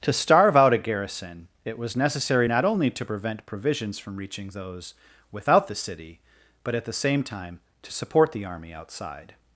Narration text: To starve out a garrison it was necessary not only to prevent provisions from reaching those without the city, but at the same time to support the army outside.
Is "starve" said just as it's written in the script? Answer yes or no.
yes